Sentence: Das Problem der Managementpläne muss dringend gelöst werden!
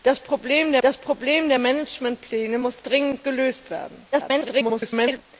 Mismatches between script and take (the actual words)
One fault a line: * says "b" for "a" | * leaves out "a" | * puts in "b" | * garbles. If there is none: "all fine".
* puts in "das Problem der"
* garbles